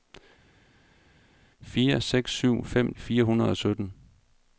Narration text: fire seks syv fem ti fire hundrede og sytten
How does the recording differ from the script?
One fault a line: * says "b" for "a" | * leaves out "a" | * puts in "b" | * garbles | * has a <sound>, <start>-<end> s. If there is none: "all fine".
* leaves out "ti"